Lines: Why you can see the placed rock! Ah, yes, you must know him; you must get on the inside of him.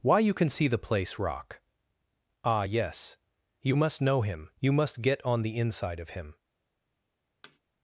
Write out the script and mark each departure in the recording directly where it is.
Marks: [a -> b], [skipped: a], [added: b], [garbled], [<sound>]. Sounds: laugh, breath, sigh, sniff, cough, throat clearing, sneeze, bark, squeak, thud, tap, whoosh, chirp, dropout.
Why you can see the [placed -> place] rock! Ah, yes, you must know him; you must get on the inside of him. [thud]